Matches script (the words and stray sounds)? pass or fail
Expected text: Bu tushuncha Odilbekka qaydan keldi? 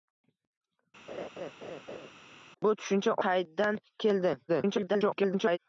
fail